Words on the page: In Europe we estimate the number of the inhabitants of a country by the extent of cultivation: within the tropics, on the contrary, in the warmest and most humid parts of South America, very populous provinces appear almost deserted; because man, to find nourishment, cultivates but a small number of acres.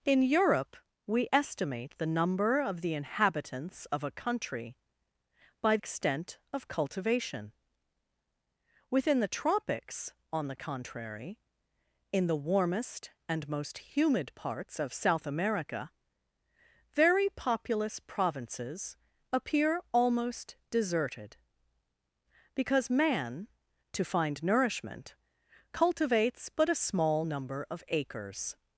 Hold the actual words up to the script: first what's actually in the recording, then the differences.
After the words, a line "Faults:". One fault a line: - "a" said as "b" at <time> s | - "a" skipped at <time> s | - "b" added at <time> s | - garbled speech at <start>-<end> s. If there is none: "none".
In Europe we estimate the number of the inhabitants of a country by extent of cultivation: within the tropics, on the contrary, in the warmest and most humid parts of South America, very populous provinces appear almost deserted; because man, to find nourishment, cultivates but a small number of acres.
Faults:
- "the" skipped at 5.8 s